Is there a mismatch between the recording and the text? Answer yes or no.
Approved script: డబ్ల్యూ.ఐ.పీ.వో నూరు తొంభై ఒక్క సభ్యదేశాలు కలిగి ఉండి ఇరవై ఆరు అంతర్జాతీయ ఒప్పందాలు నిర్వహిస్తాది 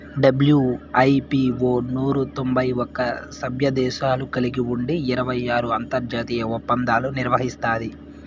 no